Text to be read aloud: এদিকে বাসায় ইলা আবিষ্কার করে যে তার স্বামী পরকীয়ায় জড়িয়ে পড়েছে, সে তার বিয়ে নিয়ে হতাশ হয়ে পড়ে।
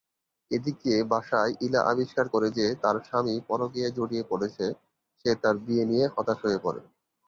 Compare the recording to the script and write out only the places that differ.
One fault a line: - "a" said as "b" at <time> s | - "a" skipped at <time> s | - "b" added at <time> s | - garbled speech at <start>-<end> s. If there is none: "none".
none